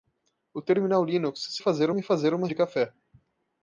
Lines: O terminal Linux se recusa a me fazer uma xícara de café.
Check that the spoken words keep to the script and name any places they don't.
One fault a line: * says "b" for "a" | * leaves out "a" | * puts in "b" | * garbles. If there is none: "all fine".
* says "fazer" for "recusa"
* leaves out "xícara"